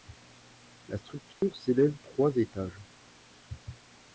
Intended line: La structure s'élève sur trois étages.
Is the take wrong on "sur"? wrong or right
wrong